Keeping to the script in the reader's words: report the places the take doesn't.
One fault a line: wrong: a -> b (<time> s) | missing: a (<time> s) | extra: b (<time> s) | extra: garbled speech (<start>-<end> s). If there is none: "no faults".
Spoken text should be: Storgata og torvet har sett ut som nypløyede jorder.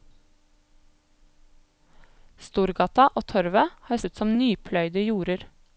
missing: sett (4.0 s)